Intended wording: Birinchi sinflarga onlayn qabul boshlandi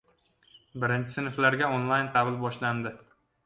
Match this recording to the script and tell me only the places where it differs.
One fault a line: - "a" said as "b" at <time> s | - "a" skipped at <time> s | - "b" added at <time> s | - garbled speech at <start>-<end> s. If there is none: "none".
none